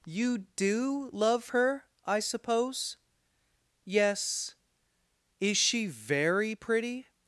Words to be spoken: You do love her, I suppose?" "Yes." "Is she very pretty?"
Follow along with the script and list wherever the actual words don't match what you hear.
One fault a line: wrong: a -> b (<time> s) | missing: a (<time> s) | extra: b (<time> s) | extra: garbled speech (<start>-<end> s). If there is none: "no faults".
no faults